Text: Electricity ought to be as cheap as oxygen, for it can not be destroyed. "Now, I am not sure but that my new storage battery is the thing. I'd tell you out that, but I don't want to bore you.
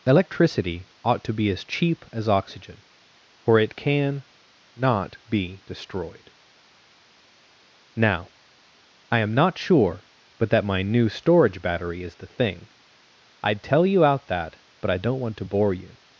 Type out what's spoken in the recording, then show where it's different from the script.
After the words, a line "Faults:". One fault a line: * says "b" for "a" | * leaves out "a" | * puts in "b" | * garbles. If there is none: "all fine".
Electricity ought to be as cheap as oxygen, for it can not be destroyed. "Now, I am not sure but that my new storage battery is the thing. I'd tell you out that, but I don't want to bore you.
Faults:
all fine